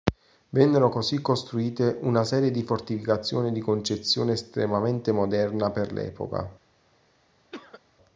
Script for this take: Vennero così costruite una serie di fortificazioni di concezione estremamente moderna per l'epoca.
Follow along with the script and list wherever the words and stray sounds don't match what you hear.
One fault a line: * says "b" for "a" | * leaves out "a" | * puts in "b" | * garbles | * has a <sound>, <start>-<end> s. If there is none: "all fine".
* has a cough, 7.5-7.8 s